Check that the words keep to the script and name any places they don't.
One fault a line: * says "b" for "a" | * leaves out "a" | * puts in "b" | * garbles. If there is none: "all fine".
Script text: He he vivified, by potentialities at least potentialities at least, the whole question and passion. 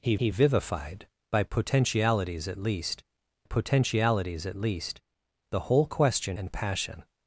all fine